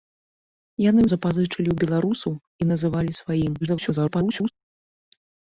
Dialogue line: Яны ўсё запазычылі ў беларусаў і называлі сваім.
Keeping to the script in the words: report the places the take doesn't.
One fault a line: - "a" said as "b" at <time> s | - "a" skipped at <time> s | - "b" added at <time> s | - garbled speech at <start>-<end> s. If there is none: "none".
- "ўсё" skipped at 1.0 s
- garbled speech at 3.6-4.5 s